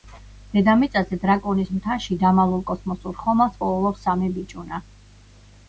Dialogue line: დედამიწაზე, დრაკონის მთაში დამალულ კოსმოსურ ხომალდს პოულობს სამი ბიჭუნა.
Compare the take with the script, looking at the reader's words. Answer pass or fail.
pass